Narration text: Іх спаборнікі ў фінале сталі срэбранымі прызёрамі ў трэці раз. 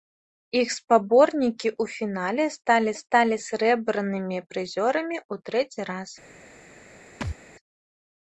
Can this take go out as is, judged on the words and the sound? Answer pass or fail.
fail